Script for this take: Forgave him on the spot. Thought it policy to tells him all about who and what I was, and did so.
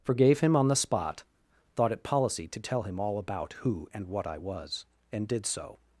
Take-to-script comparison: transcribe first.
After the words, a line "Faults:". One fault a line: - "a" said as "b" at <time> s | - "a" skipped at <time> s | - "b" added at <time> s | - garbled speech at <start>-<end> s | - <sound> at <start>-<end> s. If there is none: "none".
Forgave him on the spot. Thought it policy to tell him all about who and what I was, and did so.
Faults:
- "tells" said as "tell" at 2.6 s